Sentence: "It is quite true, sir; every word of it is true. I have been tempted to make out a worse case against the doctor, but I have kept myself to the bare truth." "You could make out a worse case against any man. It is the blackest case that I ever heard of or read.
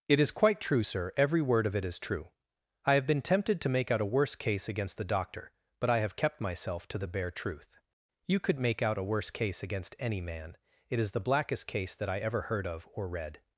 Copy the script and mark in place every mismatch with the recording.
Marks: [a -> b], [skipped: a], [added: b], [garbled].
"It is quite true, sir; every word of it is true. I have been tempted to make out a worse case against the doctor, but I have kept myself to the bare truth." "You could make out a worse case against any man. It is the blackest case that I ever heard of or read.